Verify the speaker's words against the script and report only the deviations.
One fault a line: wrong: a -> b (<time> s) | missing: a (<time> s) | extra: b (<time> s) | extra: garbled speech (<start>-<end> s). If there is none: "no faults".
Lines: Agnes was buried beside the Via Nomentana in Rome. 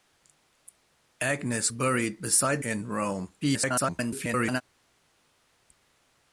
missing: was (1.7 s)
missing: the Via Nomentana (2.6 s)
extra: garbled speech (3.4-4.6 s)